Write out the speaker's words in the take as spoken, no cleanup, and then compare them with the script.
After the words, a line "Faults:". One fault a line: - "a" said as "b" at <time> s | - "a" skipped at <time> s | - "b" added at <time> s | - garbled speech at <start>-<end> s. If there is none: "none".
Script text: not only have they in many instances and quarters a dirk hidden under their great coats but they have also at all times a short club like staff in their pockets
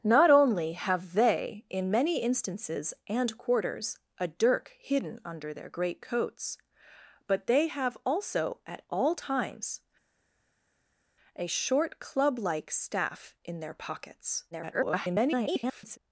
not only have they in many instances and quarters a dirk hidden under their great coats but they have also at all times a short club like staff in their pockets [garbled]
Faults:
- garbled speech at 14.5-16.0 s